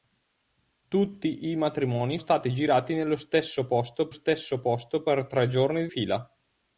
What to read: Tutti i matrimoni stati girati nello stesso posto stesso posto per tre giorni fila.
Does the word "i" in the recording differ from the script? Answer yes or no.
no